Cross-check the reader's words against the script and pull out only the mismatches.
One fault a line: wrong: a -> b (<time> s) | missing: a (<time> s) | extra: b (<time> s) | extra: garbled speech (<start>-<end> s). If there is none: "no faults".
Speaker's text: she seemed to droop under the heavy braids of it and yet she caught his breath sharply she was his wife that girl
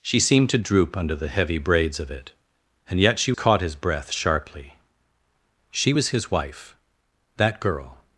no faults